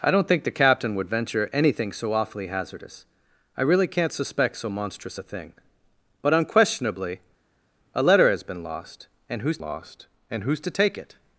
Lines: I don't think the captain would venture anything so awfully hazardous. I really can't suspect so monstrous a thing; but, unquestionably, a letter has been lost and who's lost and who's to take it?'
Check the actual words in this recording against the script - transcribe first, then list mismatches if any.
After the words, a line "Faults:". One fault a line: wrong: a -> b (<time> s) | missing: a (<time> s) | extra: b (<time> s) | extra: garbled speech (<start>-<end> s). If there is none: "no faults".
I don't think the captain would venture anything so awfully hazardous. I really can't suspect so monstrous a thing; but, unquestionably, a letter has been lost and who's lost and who's to take it?'
Faults:
no faults